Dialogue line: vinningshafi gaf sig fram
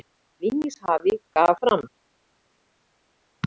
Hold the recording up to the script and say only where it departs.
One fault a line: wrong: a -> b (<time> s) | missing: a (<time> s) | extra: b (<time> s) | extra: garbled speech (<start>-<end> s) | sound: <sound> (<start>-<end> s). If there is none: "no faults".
missing: sig (1.6 s)